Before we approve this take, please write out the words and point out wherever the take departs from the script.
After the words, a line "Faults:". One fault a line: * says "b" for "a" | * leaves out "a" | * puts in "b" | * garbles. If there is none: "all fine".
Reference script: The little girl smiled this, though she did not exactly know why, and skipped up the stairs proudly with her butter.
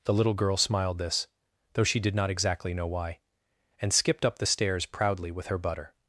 The little girl smiled this, though she did not exactly know why, and skipped up the stairs proudly with her butter.
Faults:
all fine